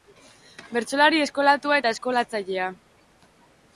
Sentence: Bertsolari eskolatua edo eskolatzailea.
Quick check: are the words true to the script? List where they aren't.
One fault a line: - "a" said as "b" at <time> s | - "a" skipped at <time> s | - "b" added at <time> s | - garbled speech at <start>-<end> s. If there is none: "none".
- "edo" said as "eta" at 1.8 s